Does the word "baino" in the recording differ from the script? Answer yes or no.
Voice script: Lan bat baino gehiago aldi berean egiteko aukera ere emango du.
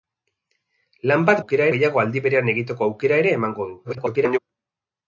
yes